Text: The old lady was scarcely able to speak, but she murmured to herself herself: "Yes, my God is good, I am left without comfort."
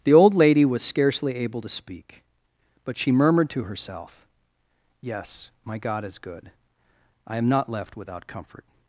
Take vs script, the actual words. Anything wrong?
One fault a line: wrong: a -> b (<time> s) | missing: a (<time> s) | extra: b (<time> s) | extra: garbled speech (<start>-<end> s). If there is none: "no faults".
missing: herself (4.3 s)
extra: not (7.5 s)